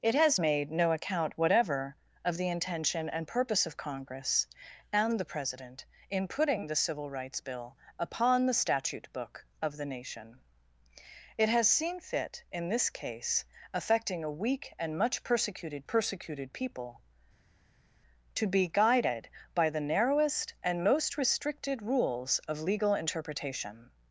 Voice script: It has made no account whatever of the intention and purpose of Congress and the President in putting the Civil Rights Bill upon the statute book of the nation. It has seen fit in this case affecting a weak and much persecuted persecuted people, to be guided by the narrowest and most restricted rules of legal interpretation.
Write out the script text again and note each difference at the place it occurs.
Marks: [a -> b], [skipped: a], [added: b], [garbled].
It has made no account whatever of the intention and purpose of Congress and the President in putting the Civil Rights Bill upon the statute book of the nation. It has seen fit in this case affecting a weak and much persecuted persecuted people, to be guided by the narrowest and most restricted rules of legal interpretation.